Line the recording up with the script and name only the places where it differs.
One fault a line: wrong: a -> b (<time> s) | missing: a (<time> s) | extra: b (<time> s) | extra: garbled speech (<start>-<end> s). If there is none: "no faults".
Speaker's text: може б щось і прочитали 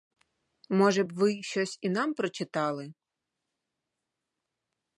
extra: ви (1.1 s)
extra: нам (1.9 s)